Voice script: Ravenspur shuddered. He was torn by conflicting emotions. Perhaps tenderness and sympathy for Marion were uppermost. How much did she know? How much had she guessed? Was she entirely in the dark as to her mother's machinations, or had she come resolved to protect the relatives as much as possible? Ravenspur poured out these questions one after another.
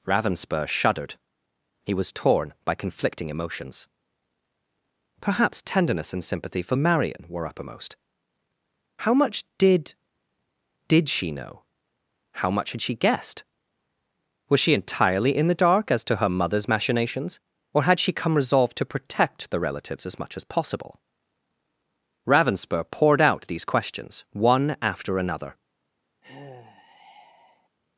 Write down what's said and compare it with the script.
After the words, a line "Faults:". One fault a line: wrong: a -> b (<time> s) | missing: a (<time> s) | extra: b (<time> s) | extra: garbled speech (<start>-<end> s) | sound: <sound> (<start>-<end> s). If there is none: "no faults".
Ravenspur shuddered. He was torn by conflicting emotions. Perhaps tenderness and sympathy for Marion were uppermost. How much did did she know? How much had she guessed? Was she entirely in the dark as to her mother's machinations, or had she come resolved to protect the relatives as much as possible? Ravenspur poured out these questions one after another.
Faults:
extra: did (10.9 s)
sound: sigh (26.2-27.7 s)